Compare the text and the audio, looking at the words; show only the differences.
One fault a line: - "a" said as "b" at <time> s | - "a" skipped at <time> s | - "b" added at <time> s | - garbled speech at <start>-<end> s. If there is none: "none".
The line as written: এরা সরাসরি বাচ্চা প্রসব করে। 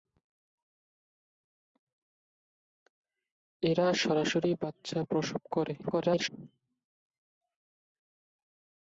- garbled speech at 5.8-6.3 s